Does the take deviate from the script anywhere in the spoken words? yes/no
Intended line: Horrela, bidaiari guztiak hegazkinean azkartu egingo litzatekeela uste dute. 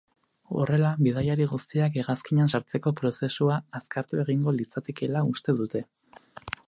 yes